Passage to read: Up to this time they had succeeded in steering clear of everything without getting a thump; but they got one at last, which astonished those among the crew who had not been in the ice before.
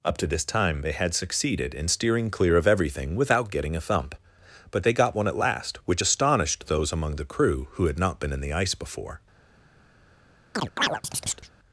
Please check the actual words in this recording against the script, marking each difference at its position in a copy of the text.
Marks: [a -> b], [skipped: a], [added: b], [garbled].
Up to this time they had succeeded in steering clear of everything without getting a thump; but they got one at last, which astonished those among the crew who had not been in the ice before.